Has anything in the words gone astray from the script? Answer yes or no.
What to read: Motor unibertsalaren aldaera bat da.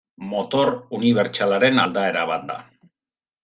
no